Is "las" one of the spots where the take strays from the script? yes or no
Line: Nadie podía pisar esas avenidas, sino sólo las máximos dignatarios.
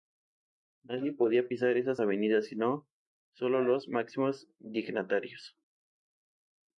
yes